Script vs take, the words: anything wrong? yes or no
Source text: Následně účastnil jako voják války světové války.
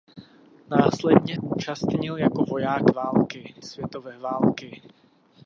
no